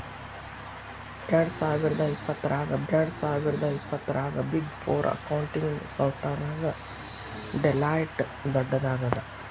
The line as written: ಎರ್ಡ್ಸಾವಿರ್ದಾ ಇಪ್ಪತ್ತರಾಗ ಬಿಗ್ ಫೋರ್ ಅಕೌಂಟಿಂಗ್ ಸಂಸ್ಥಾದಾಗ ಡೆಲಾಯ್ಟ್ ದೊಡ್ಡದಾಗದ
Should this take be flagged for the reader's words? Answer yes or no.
yes